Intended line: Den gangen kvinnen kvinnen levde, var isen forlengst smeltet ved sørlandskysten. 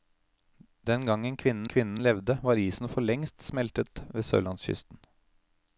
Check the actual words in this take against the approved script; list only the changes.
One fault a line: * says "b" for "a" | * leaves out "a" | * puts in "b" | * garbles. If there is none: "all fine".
all fine